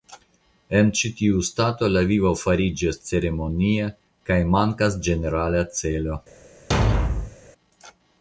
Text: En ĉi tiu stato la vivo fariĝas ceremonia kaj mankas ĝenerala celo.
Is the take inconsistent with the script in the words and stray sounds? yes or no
yes